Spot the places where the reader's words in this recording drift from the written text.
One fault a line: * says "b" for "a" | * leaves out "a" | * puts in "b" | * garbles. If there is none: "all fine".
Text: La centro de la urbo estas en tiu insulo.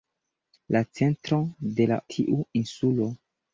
* leaves out "urbo estas en"